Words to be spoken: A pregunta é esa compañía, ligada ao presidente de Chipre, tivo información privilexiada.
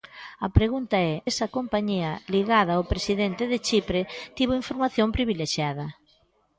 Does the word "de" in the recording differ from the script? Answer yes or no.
no